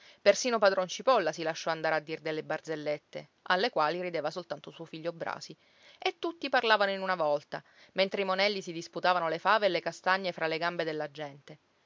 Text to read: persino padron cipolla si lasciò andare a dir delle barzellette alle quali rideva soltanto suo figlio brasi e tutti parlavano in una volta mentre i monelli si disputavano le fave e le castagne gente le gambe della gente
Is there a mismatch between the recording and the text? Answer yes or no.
yes